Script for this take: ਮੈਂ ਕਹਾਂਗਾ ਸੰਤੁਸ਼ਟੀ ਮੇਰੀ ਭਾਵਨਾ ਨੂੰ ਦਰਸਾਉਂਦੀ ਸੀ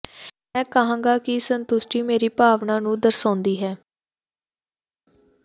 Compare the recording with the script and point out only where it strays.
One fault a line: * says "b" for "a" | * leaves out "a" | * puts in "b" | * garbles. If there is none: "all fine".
* puts in "ਕਿ"
* says "ਹੈ" for "ਸੀ"